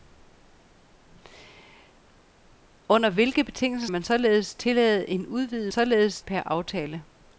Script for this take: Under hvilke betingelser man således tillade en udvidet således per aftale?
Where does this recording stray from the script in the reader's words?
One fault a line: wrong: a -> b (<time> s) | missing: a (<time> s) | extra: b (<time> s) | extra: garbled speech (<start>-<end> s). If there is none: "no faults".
no faults